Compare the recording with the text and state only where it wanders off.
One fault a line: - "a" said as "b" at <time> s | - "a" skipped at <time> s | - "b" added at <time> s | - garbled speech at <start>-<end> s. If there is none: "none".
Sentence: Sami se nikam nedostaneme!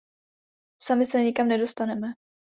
none